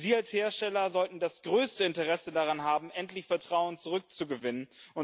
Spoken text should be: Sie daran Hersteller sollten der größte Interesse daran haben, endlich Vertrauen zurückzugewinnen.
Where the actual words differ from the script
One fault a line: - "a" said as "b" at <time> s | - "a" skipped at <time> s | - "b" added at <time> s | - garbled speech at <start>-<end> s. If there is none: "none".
- "daran" said as "als" at 0.1 s
- "der" said as "das" at 1.2 s